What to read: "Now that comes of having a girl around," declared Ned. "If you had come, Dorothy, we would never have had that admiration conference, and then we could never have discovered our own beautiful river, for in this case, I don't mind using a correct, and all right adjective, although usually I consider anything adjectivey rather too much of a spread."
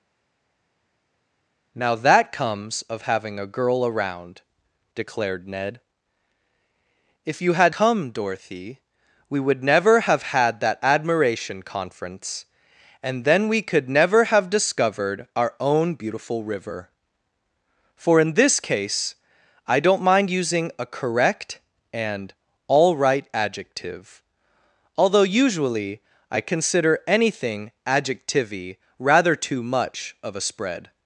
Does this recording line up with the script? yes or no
yes